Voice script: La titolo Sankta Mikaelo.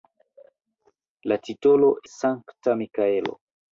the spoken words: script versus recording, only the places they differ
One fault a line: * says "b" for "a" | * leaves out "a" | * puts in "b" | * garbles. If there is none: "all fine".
all fine